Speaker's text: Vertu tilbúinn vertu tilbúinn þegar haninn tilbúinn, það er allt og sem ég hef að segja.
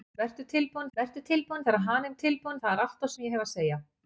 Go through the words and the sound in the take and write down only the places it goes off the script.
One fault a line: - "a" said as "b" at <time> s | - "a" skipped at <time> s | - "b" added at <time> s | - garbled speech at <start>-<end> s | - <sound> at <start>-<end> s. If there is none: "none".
none